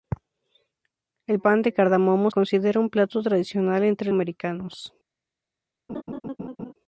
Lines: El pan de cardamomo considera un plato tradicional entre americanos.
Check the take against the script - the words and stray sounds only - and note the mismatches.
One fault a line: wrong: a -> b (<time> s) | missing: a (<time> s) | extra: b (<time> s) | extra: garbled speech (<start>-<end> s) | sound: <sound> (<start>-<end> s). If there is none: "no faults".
sound: laugh (5.9-6.7 s)